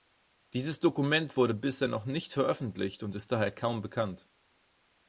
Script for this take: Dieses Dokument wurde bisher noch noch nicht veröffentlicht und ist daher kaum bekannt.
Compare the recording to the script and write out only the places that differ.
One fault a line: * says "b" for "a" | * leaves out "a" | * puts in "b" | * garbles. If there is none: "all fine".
* leaves out "noch"